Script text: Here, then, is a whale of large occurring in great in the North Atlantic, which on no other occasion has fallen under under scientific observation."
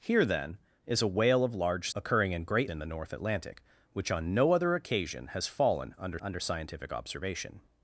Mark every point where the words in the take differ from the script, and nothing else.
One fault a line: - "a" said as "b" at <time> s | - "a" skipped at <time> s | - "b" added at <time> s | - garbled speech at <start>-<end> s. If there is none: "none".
none